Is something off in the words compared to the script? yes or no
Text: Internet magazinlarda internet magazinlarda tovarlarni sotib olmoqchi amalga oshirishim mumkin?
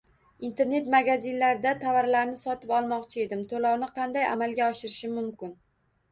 yes